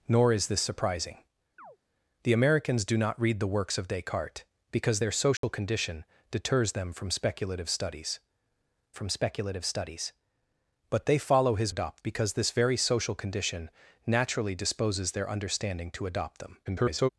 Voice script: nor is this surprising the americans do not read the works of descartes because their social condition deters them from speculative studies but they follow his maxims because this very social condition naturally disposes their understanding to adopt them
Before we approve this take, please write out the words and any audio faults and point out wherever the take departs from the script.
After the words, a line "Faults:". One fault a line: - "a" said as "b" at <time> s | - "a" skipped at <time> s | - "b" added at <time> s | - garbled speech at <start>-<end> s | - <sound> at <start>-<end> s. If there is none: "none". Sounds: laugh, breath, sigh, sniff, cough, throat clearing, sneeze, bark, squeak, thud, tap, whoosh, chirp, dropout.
nor is this surprising the americans do not read the works of descartes because their social condition deters them from speculative studies from speculative studies but they follow his adopt because this very social condition naturally disposes their understanding to adopt them [garbled]
Faults:
- chirp at 1.6-1.8 s
- dropout at 5.4-5.4 s
- "from speculative studies" added at 8.9 s
- "maxims" said as "adopt" at 11.7 s
- garbled speech at 16.6-17.1 s